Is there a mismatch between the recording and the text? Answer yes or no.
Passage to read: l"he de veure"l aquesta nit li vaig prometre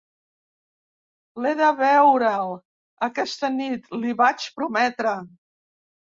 no